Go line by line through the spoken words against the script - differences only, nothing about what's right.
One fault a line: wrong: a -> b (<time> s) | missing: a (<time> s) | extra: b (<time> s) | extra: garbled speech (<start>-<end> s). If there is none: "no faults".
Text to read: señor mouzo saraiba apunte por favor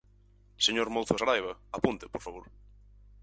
no faults